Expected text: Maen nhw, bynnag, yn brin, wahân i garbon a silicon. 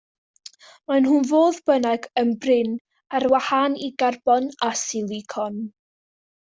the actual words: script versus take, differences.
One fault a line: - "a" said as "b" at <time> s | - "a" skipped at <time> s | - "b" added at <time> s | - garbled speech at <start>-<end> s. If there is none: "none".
- "fodd" added at 1.3 s
- "ar" added at 3.2 s